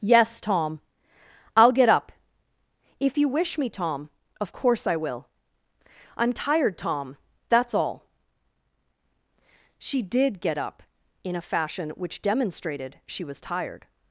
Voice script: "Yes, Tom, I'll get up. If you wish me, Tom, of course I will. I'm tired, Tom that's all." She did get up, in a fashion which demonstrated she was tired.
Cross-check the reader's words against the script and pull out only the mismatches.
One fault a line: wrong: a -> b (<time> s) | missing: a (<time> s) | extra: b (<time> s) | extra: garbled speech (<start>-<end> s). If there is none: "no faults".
no faults